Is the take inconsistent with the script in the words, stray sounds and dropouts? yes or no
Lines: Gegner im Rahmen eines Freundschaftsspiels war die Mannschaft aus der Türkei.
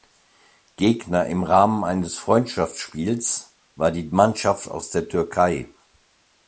no